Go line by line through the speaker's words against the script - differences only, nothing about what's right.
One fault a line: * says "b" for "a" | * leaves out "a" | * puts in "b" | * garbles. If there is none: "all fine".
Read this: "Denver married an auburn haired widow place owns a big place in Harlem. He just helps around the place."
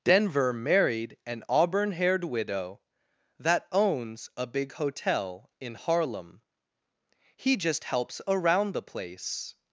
* says "that" for "place"
* says "hotel" for "place"